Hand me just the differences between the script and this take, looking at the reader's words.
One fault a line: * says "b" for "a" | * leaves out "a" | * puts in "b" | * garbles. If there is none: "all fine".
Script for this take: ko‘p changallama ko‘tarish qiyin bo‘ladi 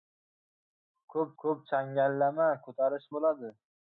* puts in "ko‘p"
* leaves out "qiyin"